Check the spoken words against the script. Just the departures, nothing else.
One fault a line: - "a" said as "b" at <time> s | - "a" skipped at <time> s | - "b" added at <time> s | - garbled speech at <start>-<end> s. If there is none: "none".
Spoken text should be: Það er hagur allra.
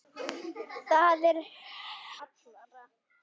- "hagur" skipped at 1.4 s